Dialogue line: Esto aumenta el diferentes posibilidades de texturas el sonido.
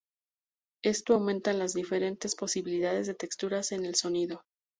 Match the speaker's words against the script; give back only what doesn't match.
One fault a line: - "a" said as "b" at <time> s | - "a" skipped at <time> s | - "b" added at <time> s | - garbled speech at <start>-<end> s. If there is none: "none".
- "el" said as "las" at 1.5 s
- "en" added at 3.7 s